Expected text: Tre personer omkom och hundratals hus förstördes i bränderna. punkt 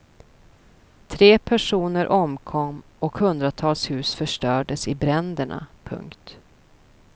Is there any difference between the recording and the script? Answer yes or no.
no